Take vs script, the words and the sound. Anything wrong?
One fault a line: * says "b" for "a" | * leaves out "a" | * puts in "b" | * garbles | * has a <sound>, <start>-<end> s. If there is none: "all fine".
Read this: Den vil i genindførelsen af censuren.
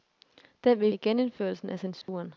* has a dropout, 2.0-2.1 s